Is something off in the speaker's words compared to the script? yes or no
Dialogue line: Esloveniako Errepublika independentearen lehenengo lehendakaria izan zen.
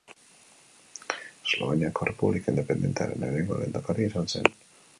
no